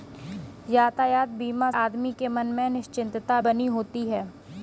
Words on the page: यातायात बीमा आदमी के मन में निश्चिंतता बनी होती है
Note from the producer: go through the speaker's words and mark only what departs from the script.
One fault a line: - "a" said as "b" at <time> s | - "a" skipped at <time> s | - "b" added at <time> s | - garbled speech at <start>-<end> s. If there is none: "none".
none